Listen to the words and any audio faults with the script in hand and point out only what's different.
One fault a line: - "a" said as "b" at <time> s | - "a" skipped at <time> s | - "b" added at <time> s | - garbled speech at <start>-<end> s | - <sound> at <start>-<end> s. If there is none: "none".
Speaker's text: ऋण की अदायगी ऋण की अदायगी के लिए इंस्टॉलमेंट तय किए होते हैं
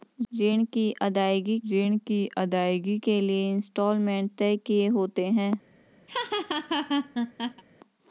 - laugh at 6.1-7.6 s